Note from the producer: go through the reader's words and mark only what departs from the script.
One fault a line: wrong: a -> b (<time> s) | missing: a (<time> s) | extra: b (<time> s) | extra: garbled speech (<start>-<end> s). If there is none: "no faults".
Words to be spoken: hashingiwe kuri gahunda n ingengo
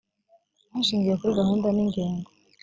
no faults